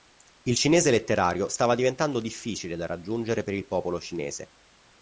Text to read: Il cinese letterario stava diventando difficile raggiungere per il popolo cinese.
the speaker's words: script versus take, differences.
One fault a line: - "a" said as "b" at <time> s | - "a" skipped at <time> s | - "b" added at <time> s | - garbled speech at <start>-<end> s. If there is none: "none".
- "da" added at 2.8 s